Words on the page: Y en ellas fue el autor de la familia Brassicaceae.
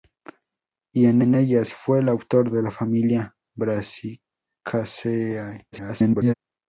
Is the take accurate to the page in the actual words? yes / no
no